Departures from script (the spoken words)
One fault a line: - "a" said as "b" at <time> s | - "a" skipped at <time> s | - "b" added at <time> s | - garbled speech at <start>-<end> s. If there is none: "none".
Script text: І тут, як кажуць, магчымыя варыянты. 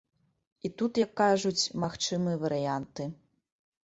none